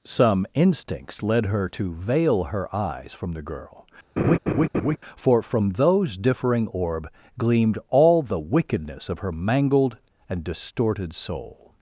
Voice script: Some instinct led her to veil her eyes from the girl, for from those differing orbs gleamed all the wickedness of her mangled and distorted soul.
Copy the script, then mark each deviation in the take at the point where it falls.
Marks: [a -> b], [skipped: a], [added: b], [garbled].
Some [instinct -> instincts] led her to veil her eyes from the girl, for from those differing [orbs -> orb] gleamed all the wickedness of her mangled and distorted soul.